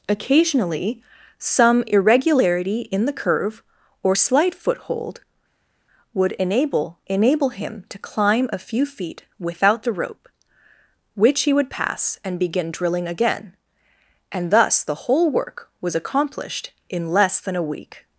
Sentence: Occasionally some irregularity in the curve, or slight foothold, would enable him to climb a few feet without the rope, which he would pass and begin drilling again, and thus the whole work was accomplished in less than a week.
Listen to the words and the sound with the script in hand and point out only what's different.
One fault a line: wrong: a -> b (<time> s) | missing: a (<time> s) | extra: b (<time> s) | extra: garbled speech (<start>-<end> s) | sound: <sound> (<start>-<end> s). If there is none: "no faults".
extra: enable (7.1 s)